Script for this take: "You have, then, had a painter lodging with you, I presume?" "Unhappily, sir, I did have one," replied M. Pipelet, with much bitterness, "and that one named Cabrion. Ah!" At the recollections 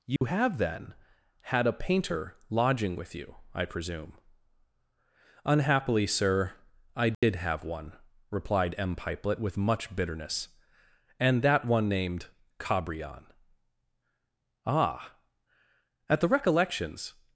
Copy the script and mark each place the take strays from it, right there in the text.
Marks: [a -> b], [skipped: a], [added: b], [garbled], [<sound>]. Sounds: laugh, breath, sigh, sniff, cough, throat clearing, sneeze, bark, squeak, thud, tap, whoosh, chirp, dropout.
"You [dropout] have, then, had a painter lodging with you, I presume?" "Unhappily, sir, I did [dropout] have one," replied M. Pipelet, with much bitterness, "and that one named Cabrion. Ah!" At the recollections